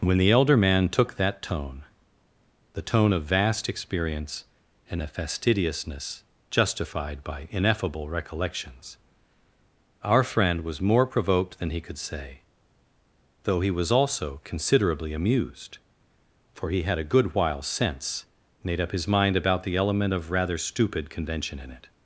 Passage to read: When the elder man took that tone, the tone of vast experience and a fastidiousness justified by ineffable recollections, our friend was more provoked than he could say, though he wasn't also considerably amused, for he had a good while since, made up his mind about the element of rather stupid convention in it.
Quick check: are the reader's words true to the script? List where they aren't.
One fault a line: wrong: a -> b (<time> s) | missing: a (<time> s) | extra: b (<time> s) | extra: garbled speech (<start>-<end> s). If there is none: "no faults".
wrong: wasn't -> was (13.7 s)